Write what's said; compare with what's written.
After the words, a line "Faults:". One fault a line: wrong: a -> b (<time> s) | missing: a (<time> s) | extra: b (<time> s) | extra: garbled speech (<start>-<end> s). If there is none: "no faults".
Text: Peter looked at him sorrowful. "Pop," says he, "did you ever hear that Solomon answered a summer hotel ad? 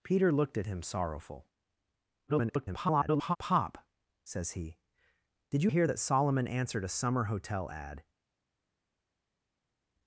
Peter looked at him sorrowful. [garbled] "Pop," says he, "did you hear that Solomon answered a summer hotel ad?
Faults:
extra: garbled speech (2.3-3.4 s)
missing: ever (5.7 s)